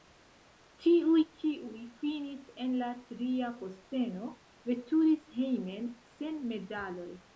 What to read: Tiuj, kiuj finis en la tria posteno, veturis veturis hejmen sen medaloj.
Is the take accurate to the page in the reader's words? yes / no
no